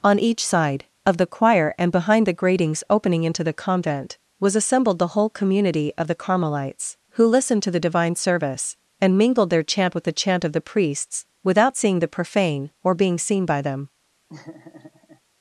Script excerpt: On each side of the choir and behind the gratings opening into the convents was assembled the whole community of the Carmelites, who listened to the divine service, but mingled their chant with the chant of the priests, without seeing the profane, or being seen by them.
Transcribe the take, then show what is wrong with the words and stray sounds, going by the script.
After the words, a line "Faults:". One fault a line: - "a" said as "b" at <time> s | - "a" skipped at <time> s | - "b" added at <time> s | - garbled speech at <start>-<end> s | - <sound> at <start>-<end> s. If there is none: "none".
On each side of the choir and behind the gratings opening into the convent was assembled the whole community of the Carmelites, who listened to the divine service, and mingled their chant with the chant of the priests, without seeing the profane, or being seen by them.
Faults:
- "convents" said as "convent" at 3.5 s
- "but" said as "and" at 9.0 s
- laugh at 14.3-15.2 s